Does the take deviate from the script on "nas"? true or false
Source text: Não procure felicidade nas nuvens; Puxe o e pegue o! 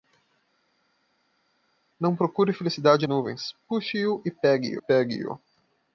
true